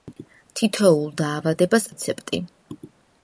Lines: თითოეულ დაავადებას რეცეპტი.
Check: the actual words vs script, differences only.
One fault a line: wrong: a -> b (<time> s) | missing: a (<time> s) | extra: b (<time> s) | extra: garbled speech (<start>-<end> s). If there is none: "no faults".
no faults